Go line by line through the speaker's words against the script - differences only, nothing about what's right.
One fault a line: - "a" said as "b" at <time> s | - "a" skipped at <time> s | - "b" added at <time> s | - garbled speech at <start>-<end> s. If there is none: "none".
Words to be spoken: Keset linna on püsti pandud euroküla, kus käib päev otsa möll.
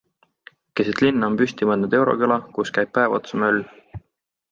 none